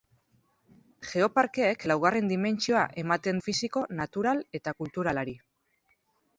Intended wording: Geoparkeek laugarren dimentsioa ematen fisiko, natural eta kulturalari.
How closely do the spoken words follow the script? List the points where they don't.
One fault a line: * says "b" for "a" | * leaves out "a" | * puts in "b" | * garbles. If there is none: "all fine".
all fine